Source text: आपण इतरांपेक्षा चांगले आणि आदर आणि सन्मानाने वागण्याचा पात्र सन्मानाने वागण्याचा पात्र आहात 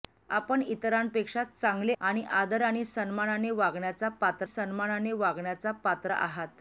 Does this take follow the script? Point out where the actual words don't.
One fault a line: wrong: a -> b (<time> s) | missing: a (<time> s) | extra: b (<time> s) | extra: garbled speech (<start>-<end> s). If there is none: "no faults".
no faults